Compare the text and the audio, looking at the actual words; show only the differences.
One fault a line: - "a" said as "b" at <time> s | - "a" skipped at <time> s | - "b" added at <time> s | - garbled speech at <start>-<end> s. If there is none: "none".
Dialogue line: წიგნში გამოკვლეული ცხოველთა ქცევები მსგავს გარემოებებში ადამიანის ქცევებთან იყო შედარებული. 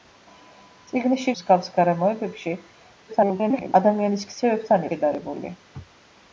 - "გამოკვლეული ცხოველთა ქცევები" skipped at 1.3 s
- garbled speech at 3.1-3.7 s
- "იყო" skipped at 4.9 s